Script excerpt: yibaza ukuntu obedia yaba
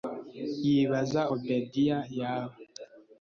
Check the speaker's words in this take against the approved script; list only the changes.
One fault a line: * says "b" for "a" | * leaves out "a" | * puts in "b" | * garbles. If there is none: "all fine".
* leaves out "ukuntu"